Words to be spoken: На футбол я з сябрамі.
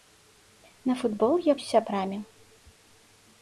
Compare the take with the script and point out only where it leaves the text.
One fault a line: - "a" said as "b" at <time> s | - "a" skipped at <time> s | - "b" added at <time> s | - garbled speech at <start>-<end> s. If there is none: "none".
none